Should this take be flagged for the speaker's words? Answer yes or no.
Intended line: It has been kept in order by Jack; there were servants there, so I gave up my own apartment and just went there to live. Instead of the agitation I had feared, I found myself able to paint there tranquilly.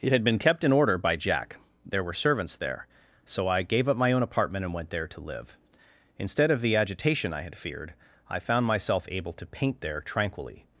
yes